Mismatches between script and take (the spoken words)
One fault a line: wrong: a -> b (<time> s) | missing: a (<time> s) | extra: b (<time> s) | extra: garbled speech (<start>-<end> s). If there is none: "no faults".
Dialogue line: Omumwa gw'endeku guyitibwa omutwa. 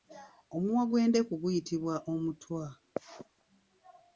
no faults